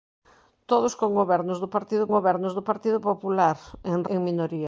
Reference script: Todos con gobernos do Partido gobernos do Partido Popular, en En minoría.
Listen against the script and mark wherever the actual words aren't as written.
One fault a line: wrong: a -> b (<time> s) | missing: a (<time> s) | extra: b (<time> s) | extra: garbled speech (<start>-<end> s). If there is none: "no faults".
no faults